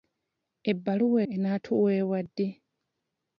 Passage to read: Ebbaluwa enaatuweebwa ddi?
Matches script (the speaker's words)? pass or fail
pass